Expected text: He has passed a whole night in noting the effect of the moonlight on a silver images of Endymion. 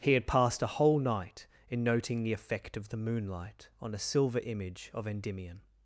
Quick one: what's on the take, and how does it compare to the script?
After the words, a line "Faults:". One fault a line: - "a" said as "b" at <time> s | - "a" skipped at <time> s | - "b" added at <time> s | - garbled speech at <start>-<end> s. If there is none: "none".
He had passed a whole night in noting the effect of the moonlight on a silver image of Endymion.
Faults:
- "has" said as "had" at 0.1 s
- "images" said as "image" at 4.4 s